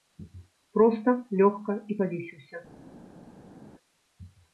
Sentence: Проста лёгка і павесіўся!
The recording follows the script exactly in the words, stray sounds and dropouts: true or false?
true